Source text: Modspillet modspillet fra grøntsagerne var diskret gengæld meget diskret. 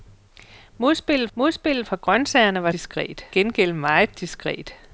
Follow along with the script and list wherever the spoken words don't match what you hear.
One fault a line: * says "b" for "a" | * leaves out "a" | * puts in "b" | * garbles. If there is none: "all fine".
all fine